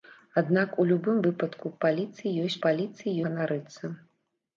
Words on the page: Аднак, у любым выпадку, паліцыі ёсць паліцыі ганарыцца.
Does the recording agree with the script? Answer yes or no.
yes